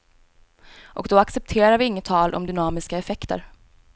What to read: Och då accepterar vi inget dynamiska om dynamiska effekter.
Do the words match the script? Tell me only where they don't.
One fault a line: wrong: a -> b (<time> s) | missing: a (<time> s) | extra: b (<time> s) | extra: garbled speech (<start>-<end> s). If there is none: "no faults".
wrong: dynamiska -> tal (2.0 s)